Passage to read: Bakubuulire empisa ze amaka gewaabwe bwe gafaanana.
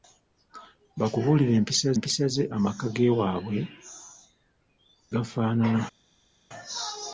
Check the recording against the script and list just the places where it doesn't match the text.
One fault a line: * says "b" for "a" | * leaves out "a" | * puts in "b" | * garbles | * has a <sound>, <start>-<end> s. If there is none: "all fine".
* puts in "empisa"
* leaves out "bwe"